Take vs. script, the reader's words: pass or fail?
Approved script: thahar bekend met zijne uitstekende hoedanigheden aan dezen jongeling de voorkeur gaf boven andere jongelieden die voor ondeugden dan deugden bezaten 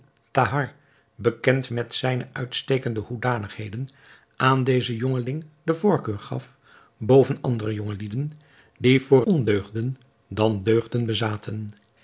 pass